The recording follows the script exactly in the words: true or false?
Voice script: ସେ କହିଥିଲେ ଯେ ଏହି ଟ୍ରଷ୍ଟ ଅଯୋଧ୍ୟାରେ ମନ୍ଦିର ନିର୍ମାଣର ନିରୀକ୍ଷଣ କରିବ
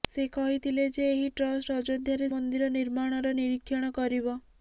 true